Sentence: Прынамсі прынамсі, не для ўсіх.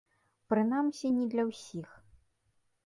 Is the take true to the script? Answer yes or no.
no